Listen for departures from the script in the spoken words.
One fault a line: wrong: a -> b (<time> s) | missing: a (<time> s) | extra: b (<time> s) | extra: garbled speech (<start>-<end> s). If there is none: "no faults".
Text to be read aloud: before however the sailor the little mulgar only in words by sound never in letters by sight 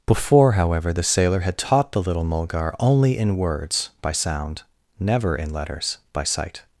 extra: had taught (1.4 s)